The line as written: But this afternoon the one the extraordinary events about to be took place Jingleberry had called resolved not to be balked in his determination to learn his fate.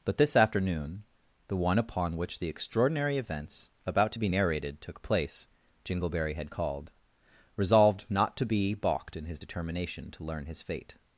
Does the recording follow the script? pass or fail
fail